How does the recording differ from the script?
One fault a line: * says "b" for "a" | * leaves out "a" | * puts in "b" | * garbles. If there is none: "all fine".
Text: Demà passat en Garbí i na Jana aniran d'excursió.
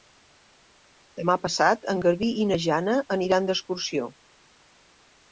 all fine